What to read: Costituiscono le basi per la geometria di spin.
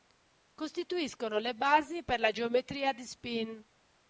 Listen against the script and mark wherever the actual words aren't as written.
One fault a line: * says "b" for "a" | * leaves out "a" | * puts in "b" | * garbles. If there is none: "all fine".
all fine